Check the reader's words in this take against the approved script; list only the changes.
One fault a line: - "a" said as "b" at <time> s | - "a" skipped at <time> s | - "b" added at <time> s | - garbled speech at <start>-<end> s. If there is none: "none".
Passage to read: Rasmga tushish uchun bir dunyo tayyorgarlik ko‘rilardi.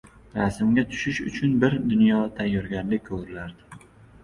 none